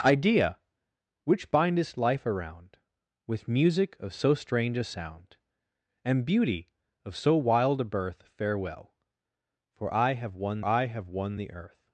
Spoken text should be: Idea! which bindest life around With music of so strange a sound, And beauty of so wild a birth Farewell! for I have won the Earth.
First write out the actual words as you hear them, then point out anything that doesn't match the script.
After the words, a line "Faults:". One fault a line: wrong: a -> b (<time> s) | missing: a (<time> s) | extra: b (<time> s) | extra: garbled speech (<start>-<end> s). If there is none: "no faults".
Idea! which bindest life around With music of so strange a sound, And beauty of so wild a birth Farewell! for I have won I have won the Earth.
Faults:
extra: I have won (10.6 s)